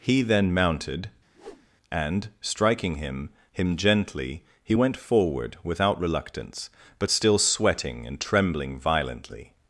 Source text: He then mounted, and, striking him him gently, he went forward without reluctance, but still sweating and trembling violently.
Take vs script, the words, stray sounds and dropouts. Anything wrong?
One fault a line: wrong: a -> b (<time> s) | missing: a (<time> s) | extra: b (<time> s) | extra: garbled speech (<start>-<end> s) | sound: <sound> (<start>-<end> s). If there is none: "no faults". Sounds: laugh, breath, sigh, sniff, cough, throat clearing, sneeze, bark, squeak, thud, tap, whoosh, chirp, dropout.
sound: whoosh (1.3-1.7 s)